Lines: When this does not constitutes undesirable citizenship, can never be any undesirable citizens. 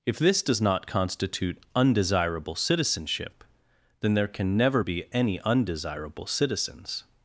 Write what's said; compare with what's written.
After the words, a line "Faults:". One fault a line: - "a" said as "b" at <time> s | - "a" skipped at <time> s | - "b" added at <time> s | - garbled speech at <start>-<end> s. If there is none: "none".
If this does not constitute undesirable citizenship, then there can never be any undesirable citizens.
Faults:
- "When" said as "If" at 0.0 s
- "constitutes" said as "constitute" at 0.9 s
- "then there" added at 4.0 s